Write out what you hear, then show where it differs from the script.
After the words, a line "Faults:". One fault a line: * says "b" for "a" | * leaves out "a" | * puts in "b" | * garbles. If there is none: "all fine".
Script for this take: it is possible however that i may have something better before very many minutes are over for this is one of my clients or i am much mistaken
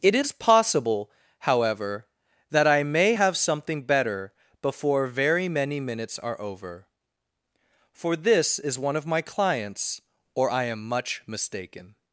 it is possible however that i may have something better before very many minutes are over for this is one of my clients or i am much mistaken
Faults:
all fine